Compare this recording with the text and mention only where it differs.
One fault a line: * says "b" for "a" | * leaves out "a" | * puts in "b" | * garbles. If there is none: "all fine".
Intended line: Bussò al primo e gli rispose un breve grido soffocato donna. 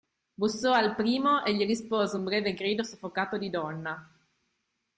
* puts in "di"